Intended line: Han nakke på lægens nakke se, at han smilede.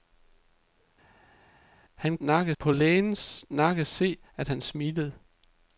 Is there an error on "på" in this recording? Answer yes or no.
no